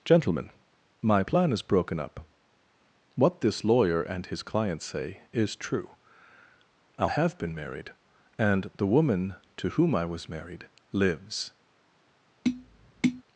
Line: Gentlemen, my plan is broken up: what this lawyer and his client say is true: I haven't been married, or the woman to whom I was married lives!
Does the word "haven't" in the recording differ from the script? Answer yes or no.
yes